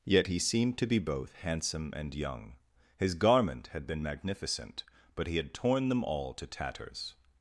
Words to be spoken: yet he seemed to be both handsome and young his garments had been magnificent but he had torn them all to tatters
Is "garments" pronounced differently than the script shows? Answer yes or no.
yes